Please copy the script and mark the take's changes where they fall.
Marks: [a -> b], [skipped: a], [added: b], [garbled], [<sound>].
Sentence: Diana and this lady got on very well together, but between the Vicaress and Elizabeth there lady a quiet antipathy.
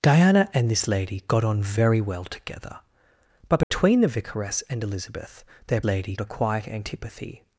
Diana and this lady got on very well together, but between [dropout] the Vicaress and Elizabeth there lady a quiet antipathy.